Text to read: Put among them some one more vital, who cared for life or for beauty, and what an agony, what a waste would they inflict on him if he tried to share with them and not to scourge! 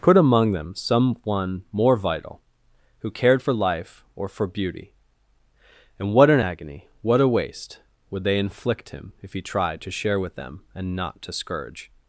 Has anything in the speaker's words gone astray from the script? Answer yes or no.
yes